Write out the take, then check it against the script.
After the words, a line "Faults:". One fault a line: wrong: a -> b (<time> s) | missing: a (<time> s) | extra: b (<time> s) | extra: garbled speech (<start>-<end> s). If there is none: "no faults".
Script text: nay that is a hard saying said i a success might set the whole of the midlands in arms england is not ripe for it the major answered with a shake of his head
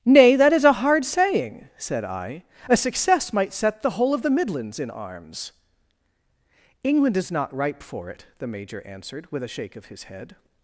nay that is a hard saying said i a success might set the whole of the midlands in arms england is not ripe for it the major answered with a shake of his head
Faults:
no faults